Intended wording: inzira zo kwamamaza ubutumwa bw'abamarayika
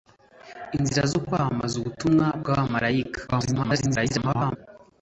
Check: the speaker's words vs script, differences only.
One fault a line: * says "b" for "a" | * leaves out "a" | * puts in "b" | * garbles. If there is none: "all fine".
* garbles